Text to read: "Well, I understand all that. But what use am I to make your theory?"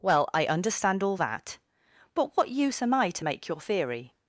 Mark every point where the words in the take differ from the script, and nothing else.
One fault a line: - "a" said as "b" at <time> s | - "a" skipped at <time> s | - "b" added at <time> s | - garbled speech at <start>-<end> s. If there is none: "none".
none